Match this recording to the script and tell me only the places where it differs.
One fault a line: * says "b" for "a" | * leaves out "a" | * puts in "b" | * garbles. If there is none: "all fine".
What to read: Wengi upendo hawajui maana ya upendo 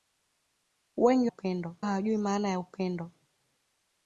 all fine